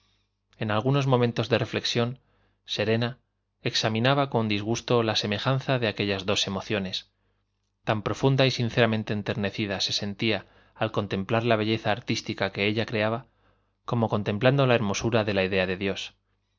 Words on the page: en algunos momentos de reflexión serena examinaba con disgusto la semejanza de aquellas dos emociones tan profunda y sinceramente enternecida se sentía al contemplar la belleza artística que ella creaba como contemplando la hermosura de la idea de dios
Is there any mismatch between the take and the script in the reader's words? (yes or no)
no